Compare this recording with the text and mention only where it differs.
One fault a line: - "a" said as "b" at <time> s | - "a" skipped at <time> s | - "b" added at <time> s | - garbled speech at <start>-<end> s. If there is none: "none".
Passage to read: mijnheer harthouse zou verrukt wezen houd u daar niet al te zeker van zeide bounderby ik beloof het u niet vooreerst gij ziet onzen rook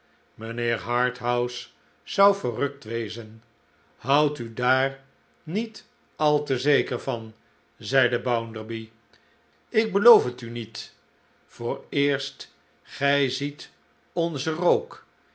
none